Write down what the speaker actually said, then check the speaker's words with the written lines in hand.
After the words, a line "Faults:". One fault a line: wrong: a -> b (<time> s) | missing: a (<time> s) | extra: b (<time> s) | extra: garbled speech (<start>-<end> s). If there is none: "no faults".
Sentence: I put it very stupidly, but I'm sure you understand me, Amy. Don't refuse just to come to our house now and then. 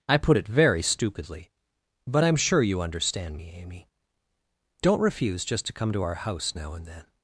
I put it very stupidly, but I'm sure you understand me, Amy. Don't refuse just to come to our house now and then.
Faults:
no faults